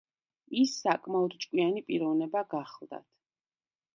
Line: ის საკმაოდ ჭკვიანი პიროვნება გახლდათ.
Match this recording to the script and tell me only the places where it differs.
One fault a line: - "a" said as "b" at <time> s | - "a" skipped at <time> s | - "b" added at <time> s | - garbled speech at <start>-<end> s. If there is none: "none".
none